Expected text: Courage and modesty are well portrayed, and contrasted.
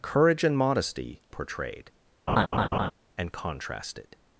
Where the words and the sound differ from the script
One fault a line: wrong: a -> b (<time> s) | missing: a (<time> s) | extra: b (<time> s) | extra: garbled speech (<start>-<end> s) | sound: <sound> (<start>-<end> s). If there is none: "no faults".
missing: are well (1.2 s)
sound: laugh (2.3-2.9 s)